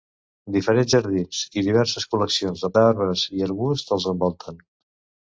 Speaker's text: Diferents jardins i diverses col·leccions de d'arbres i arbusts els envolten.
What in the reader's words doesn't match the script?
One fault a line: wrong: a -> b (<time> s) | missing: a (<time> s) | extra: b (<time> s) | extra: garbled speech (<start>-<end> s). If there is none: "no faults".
no faults